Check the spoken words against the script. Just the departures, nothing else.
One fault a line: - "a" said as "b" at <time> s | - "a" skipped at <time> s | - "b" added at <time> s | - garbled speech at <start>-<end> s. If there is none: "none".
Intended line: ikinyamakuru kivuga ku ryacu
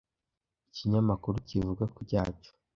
none